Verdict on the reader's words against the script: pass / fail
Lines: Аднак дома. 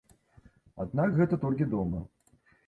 fail